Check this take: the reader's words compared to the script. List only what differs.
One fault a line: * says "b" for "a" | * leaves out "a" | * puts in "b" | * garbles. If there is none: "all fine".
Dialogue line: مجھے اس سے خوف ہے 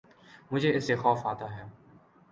* puts in "آتا"